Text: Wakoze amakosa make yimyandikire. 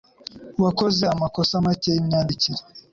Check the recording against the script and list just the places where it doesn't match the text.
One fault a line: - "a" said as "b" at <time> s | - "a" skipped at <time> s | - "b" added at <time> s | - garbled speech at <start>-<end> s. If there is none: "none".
none